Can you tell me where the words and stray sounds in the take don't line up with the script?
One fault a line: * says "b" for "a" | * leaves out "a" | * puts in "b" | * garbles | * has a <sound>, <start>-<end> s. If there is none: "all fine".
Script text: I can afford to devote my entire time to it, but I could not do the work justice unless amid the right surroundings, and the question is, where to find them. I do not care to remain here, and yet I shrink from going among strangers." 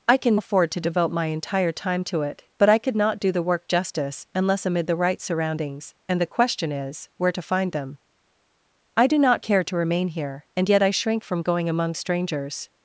all fine